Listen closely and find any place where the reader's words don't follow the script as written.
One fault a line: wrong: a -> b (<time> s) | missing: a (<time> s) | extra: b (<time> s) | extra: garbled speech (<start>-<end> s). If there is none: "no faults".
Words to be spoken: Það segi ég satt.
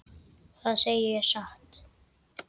no faults